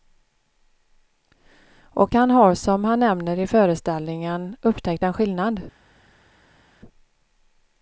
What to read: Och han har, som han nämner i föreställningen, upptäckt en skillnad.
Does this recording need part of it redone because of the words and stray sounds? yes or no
no